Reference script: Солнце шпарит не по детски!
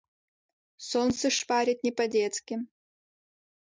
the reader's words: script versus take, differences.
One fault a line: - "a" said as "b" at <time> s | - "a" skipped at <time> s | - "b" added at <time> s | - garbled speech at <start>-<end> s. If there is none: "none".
none